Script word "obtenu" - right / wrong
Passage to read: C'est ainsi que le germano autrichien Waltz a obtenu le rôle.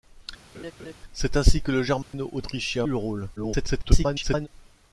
wrong